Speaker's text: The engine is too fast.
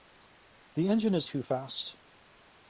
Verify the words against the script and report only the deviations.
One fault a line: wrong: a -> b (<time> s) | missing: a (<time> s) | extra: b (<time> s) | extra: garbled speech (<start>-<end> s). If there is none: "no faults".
no faults